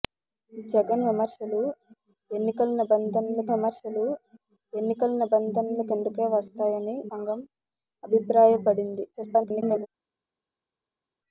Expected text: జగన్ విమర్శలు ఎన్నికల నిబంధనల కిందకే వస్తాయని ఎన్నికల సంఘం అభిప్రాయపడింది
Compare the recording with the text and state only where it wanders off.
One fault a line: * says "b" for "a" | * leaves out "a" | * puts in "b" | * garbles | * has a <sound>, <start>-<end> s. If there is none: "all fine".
* puts in "విమర్శలు ఎన్నికల నిబంధనల"
* leaves out "ఎన్నికల"
* garbles